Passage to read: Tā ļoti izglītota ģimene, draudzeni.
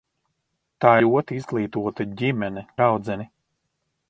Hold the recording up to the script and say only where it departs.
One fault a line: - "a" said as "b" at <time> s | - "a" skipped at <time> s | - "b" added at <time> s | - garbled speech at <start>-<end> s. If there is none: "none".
none